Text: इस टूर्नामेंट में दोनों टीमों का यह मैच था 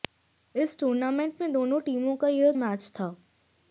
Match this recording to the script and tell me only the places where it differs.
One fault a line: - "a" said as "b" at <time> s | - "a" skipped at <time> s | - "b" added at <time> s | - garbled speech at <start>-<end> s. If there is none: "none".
none